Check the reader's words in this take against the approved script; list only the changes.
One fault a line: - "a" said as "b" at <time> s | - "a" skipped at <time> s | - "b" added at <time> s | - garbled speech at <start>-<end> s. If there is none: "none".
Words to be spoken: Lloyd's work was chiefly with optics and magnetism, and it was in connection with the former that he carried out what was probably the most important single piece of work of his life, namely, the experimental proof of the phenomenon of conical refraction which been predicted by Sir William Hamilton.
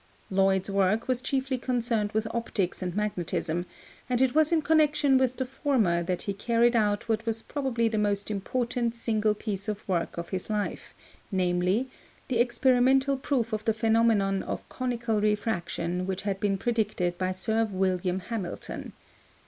- "concerned" added at 1.6 s
- "had" added at 16.2 s